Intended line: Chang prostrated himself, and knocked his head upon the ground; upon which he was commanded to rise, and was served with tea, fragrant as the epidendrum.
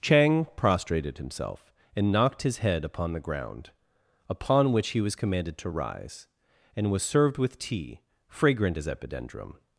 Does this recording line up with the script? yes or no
no